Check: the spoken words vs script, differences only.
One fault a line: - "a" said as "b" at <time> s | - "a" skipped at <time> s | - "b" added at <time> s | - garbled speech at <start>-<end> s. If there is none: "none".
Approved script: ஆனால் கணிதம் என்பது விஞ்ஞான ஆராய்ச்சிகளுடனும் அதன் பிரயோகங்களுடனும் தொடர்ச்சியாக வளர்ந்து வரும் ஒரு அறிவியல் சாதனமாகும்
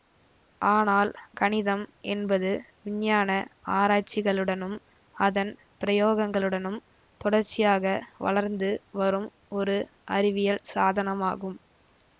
none